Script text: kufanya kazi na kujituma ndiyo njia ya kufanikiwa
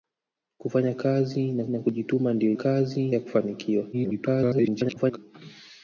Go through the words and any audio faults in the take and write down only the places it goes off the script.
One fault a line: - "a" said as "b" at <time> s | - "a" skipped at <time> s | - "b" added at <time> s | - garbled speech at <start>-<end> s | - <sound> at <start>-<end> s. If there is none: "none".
- "na" added at 1.7 s
- "njia" said as "kazi" at 2.5 s
- garbled speech at 3.9-5.2 s